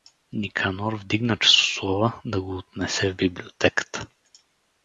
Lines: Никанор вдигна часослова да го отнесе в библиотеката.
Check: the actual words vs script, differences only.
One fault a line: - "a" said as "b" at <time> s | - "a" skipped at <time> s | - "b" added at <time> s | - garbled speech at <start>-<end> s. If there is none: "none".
none